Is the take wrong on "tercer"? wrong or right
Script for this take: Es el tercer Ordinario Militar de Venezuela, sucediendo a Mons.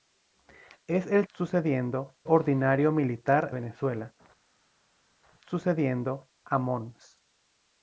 wrong